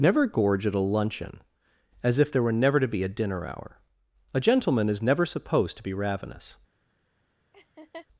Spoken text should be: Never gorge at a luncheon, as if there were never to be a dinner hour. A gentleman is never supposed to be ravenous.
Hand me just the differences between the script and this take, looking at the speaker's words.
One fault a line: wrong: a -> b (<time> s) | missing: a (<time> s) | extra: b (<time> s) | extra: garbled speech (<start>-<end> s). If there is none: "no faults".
no faults